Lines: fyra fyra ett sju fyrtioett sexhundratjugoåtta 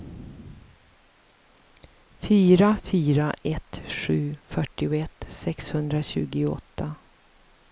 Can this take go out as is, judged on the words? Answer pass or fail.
pass